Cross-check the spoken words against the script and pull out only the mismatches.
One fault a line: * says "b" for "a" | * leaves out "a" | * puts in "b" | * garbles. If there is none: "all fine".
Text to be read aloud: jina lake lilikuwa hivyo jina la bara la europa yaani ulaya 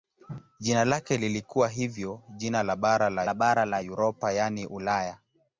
* puts in "la bara la"